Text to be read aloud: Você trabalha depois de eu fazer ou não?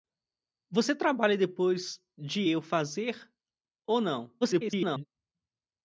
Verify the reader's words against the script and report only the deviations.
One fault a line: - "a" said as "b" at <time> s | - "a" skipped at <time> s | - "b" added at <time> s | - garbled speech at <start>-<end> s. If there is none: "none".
- garbled speech at 4.4-5.1 s